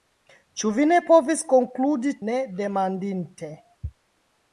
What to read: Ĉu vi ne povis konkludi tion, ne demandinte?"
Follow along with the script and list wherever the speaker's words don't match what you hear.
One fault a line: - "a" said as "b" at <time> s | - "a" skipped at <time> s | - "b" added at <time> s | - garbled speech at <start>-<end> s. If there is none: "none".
- "tion" skipped at 2.1 s